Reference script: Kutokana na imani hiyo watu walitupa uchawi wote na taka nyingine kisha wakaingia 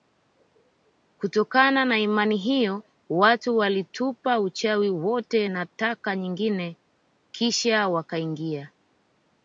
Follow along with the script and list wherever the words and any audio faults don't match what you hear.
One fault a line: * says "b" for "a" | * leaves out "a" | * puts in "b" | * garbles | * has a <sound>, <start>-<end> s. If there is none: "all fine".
all fine